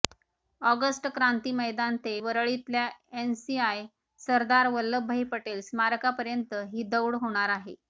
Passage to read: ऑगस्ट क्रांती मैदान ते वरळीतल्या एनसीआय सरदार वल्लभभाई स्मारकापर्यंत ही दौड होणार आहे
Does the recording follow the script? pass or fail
fail